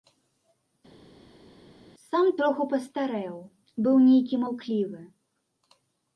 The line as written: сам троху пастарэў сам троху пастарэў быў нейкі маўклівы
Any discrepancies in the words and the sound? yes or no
yes